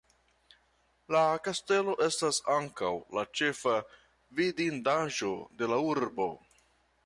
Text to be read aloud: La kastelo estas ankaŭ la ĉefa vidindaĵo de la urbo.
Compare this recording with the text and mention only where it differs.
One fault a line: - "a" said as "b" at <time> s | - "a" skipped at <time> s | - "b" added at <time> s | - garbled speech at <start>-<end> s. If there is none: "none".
none